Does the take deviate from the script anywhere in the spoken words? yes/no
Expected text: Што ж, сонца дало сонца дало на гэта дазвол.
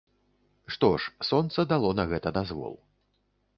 yes